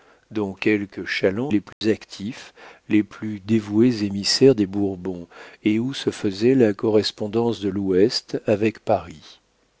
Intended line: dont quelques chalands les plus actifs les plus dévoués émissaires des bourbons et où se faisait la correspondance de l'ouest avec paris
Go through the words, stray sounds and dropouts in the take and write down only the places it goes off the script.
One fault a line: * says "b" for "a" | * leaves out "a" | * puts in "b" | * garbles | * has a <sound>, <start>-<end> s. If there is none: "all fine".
* has a dropout, 1.7-1.8 s